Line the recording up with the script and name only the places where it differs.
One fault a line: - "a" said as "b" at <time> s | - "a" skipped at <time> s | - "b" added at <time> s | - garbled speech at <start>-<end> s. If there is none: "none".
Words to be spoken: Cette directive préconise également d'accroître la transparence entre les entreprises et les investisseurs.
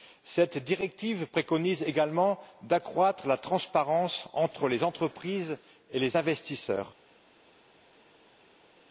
none